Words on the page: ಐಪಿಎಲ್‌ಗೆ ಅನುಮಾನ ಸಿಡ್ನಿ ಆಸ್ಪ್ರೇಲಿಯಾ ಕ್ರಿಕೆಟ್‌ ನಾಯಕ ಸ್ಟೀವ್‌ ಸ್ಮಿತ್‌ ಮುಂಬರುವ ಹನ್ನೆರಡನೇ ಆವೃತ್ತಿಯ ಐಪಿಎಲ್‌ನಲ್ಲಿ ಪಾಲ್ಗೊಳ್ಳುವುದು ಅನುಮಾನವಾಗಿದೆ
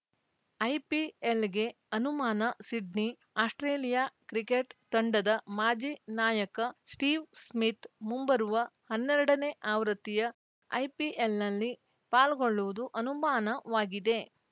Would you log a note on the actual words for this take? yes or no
yes